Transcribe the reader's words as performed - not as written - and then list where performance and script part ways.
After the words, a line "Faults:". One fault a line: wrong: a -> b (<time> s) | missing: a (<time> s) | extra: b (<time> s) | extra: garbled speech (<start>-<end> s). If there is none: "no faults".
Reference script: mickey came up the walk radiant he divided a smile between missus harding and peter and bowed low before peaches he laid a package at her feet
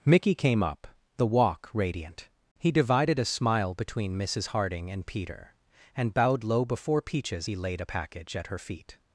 mickey came up the walk radiant he divided a smile between missus harding and peter and bowed low before peaches he laid a package at her feet
Faults:
no faults